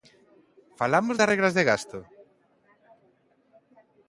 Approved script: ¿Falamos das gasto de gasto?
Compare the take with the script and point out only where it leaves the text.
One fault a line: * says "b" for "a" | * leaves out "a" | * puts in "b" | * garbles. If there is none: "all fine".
* says "regras" for "gasto"